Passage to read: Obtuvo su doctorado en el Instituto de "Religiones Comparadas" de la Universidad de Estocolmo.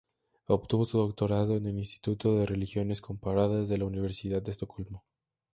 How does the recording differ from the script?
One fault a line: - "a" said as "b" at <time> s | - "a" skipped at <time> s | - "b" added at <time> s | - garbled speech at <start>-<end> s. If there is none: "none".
none